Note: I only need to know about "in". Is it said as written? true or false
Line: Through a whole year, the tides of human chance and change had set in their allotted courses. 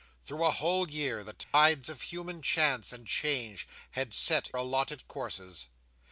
false